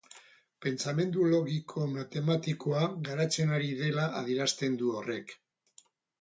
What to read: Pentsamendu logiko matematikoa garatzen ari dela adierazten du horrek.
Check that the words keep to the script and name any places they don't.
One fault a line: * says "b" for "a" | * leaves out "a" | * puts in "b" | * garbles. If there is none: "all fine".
all fine